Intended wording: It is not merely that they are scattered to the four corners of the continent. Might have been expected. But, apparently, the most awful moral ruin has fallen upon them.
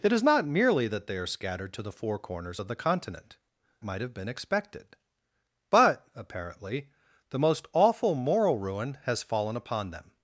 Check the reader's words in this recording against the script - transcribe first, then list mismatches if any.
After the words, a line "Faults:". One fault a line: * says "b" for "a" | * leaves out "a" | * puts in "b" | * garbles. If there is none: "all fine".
It is not merely that they are scattered to the four corners of the continent. Might have been expected. But, apparently, the most awful moral ruin has fallen upon them.
Faults:
all fine